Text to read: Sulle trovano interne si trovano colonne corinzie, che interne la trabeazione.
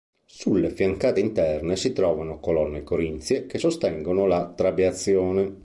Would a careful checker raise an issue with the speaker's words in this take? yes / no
yes